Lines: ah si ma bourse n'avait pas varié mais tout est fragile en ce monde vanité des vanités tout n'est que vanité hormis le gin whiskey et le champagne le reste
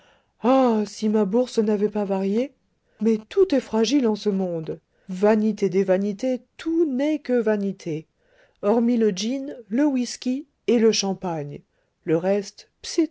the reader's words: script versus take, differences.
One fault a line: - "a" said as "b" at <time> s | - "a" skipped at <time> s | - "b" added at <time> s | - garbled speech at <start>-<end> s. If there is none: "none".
- "le" added at 9.7 s